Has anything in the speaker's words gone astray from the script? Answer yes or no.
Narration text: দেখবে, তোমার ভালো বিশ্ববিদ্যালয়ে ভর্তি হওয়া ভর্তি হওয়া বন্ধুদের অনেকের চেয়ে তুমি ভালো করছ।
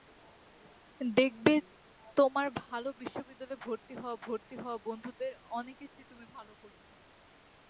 no